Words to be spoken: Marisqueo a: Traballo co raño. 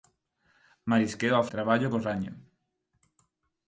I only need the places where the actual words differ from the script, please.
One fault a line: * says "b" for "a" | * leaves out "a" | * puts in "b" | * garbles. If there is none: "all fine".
all fine